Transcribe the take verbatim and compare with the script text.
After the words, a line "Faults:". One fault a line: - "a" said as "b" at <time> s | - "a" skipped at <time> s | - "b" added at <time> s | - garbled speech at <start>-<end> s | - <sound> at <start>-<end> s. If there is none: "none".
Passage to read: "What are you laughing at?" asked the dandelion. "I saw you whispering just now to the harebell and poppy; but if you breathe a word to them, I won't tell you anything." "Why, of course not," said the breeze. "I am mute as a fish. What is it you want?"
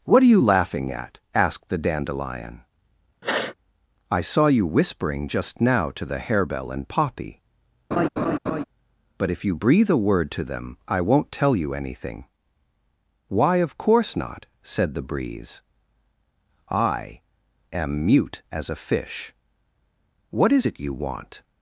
"What are you laughing at?" asked the dandelion. "I saw you whispering just now to the harebell and poppy; but if you breathe a word to them, I won't tell you anything." "Why, of course not," said the breeze. "I am mute as a fish. What is it you want?"
Faults:
- sniff at 3.2-3.6 s
- laugh at 7.9-8.6 s